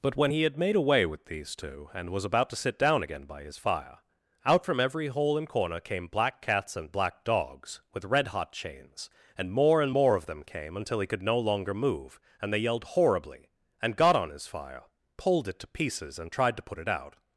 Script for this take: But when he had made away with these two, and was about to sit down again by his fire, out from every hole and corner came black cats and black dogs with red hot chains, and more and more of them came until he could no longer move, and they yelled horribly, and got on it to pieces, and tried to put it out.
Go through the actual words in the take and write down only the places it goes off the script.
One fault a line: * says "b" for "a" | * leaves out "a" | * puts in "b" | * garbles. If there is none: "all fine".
* puts in "his fire pulled"